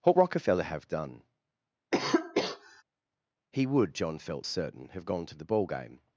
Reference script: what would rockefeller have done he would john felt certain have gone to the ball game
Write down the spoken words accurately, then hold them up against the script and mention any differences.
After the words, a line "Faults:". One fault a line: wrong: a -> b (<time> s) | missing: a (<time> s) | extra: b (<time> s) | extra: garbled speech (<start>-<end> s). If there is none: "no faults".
what rockefeller have done he would john felt certain have gone to the ball game
Faults:
missing: would (0.2 s)